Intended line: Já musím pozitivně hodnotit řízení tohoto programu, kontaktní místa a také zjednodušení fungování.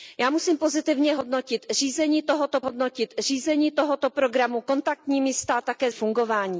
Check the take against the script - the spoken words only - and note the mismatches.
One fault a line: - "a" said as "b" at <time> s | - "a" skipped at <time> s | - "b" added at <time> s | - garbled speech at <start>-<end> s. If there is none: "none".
- "hodnotit řízení tohoto" added at 2.6 s
- "zjednodušení" skipped at 5.9 s